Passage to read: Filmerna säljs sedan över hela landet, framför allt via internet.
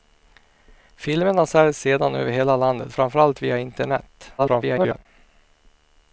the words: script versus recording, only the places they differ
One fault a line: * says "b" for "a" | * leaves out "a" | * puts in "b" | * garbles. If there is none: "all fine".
* garbles